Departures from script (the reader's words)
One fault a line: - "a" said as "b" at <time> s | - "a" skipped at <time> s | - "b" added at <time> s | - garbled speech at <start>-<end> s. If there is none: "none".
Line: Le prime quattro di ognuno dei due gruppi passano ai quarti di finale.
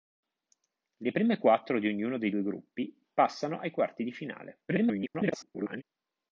- garbled speech at 4.7-5.8 s